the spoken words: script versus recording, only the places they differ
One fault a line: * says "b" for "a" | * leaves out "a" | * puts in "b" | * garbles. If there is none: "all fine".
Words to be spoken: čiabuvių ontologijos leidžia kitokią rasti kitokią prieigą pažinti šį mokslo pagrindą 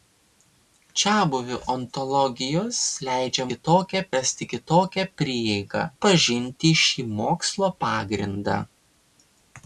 all fine